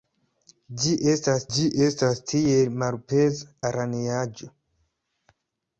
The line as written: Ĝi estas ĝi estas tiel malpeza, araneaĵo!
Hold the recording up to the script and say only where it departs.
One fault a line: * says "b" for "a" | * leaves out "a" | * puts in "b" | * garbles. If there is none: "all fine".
all fine